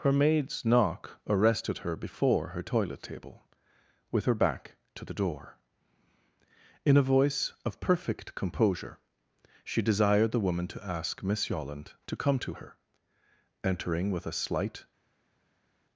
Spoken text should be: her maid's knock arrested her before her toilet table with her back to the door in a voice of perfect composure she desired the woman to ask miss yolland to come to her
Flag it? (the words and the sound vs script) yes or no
yes